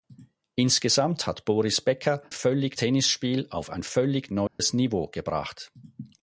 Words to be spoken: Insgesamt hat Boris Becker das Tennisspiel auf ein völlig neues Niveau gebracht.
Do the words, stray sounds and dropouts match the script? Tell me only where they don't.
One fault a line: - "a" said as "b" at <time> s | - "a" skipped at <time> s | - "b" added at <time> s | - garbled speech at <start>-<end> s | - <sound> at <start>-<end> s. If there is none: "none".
- "das" said as "völlig" at 2.3 s
- dropout at 4.5-4.6 s